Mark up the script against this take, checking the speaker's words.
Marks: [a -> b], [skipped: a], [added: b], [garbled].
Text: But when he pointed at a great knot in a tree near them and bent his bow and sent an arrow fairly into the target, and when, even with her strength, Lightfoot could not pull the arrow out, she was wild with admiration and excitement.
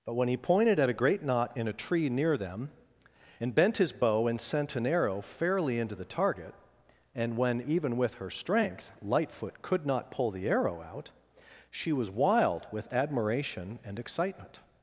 But when he pointed at a great knot in a tree near them and bent his bow and sent an arrow fairly into the target, and when, even with her strength, Lightfoot could not pull the arrow out, she was wild with admiration and excitement.